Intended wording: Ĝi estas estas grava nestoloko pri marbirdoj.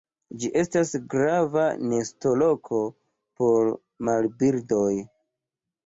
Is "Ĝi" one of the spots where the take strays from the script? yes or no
no